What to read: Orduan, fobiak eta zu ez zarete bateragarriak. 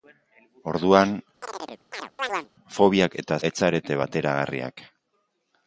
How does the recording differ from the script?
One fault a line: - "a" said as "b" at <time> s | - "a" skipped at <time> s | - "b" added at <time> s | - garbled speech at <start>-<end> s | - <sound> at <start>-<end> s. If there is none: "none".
- chirp at 1.4-2.5 s
- "zu" skipped at 3.4 s